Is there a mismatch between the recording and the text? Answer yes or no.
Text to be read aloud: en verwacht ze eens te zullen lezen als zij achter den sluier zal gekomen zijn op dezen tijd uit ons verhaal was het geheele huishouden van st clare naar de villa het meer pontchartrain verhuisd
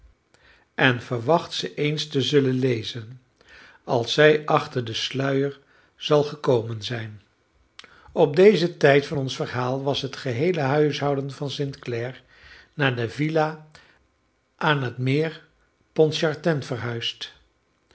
yes